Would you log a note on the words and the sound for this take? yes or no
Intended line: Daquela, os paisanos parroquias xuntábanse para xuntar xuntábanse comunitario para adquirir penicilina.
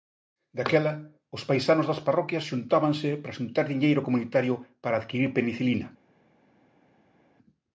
yes